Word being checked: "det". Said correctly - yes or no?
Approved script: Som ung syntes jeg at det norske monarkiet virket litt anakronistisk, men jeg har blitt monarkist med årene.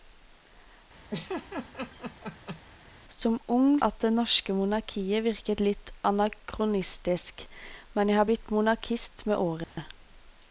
yes